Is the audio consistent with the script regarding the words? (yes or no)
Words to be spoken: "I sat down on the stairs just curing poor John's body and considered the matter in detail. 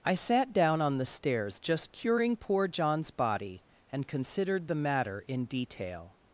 yes